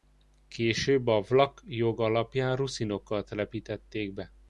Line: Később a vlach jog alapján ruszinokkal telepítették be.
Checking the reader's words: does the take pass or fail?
pass